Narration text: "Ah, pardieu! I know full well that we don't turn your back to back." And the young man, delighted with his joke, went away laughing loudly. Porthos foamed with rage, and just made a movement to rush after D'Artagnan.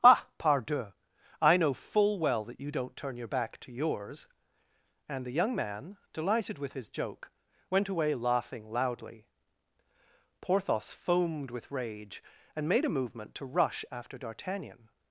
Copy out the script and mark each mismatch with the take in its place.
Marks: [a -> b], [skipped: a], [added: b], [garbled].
"Ah, pardieu! I know full well that [we -> you] don't turn your back to [back." -> yours] And the young man, delighted with his joke, went away laughing loudly. Porthos foamed with rage, and [skipped: just] made a movement to rush after D'Artagnan.